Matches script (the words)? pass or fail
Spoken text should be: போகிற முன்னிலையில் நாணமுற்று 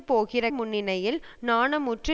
pass